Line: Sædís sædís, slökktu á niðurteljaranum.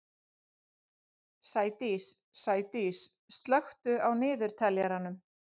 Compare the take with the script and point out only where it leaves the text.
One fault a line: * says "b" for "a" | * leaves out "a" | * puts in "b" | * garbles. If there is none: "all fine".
all fine